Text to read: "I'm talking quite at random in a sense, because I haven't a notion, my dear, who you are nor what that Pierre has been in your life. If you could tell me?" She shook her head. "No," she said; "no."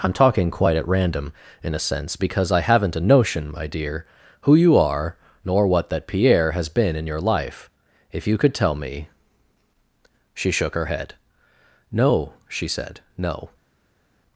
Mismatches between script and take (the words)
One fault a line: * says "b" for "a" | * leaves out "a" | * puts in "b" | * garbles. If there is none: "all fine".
all fine